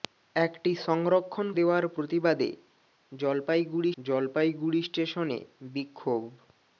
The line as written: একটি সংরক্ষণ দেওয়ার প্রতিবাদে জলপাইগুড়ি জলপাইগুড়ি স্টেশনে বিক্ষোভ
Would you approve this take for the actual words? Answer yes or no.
yes